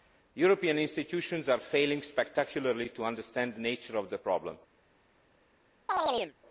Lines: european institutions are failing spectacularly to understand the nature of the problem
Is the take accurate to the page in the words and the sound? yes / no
no